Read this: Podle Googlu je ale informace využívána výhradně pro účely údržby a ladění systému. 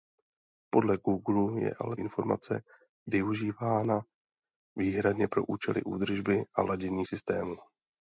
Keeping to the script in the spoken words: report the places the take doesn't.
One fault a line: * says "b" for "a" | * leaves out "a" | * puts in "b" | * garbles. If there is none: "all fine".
all fine